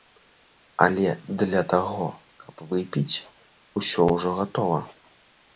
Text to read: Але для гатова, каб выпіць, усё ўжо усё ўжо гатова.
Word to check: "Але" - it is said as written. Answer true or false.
true